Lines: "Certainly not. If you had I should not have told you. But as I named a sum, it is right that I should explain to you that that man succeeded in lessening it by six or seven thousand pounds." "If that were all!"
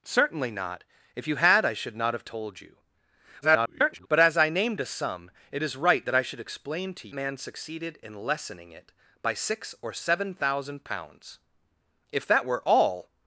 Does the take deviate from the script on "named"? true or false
false